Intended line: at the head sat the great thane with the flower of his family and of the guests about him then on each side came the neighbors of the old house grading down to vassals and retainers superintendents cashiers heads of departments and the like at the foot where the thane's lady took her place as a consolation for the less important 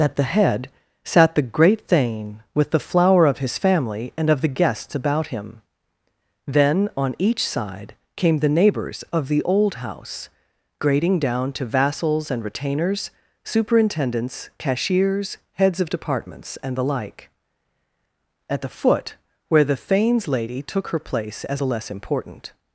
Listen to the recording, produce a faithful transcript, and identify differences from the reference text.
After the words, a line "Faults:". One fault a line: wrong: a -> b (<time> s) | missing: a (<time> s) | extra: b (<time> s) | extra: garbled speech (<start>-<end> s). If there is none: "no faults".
at the head sat the great thane with the flower of his family and of the guests about him then on each side came the neighbors of the old house grading down to vassals and retainers superintendents cashiers heads of departments and the like at the foot where the thane's lady took her place as the less important
Faults:
missing: a consolation for (21.6 s)